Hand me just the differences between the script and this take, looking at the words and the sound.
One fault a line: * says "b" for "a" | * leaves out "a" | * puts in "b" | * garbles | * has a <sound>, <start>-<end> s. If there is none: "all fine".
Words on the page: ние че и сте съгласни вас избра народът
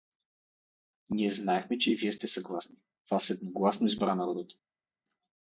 * puts in "знаехме"
* puts in "вие"
* puts in "едногласно"